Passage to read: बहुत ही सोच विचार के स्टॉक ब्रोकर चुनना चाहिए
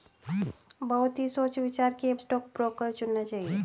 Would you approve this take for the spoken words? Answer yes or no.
yes